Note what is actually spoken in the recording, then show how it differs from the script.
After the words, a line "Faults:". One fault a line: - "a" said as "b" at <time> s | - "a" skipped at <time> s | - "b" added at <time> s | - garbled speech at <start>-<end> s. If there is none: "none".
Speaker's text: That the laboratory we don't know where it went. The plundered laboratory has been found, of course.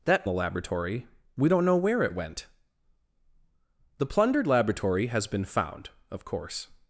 That the laboratory we don't know where it went. The plundered laboratory has been found, of course.
Faults:
none